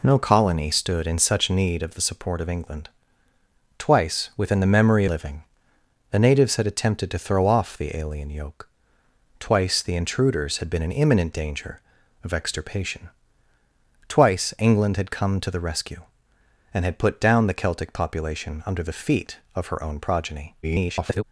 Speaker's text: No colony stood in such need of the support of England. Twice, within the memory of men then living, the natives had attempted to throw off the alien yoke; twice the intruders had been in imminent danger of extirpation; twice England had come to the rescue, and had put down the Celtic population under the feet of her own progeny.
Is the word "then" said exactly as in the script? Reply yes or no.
no